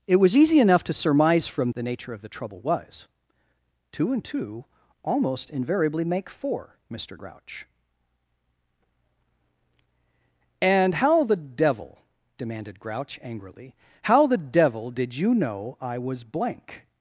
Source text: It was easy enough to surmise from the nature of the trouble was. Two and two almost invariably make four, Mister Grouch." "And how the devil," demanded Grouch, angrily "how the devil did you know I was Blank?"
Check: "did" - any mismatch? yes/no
no